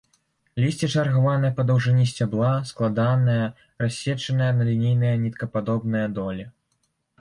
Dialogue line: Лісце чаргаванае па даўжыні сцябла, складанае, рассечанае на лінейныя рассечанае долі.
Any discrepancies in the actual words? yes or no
yes